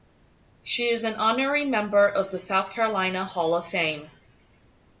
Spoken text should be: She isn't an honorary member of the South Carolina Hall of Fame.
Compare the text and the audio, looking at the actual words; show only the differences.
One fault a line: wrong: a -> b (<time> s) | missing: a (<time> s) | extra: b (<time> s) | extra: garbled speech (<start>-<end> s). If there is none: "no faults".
wrong: isn't -> is (0.9 s)